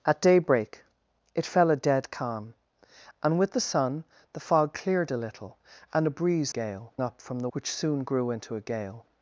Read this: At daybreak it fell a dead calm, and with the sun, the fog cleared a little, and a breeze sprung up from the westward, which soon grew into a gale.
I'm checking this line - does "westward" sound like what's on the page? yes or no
no